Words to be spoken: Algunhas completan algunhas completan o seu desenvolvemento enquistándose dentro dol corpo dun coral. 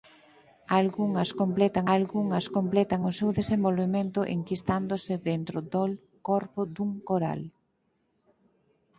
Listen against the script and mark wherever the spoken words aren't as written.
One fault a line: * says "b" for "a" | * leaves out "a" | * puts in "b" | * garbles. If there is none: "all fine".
all fine